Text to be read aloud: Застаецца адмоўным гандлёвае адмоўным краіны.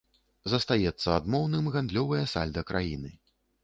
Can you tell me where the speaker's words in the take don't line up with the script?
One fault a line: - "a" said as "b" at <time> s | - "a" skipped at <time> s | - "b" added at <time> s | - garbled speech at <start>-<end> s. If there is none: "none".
- "адмоўным" said as "сальда" at 2.4 s